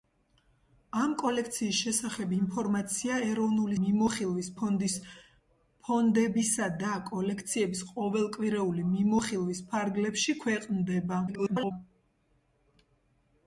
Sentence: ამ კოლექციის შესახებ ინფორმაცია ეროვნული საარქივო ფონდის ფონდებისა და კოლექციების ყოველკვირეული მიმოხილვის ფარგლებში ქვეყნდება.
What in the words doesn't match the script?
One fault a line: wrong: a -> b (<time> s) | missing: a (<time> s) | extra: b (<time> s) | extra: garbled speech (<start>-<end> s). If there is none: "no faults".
wrong: საარქივო -> მიმოხილვის (3.8 s)
extra: garbled speech (11.3-11.7 s)